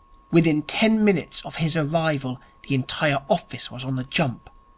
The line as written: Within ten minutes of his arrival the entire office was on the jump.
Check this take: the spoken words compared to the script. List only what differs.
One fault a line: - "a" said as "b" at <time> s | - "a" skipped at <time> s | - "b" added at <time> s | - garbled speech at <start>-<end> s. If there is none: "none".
none